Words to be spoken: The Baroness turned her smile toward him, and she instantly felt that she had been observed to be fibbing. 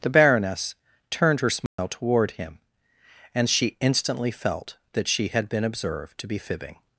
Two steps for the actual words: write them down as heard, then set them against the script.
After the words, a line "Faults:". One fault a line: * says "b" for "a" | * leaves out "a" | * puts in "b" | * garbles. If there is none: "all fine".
The Baroness turned her smile toward him, and she instantly felt that she had been observed to be fibbing.
Faults:
all fine